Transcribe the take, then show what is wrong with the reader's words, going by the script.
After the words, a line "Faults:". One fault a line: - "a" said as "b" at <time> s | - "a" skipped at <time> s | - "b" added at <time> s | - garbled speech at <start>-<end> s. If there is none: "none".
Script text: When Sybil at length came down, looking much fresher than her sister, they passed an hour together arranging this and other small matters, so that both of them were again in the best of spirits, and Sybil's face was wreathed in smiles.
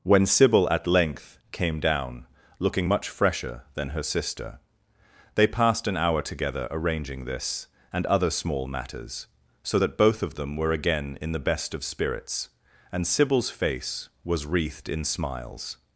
When Sybil at length came down, looking much fresher than her sister, they passed an hour together arranging this and other small matters, so that both of them were again in the best of spirits, and Sybil's face was wreathed in smiles.
Faults:
none